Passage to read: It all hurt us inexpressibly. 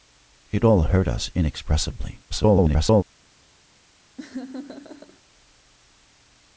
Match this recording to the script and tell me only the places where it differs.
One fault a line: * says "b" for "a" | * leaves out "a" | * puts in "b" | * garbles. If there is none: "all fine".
* garbles